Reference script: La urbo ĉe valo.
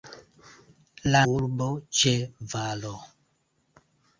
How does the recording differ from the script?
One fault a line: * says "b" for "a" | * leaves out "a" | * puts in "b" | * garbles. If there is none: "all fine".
all fine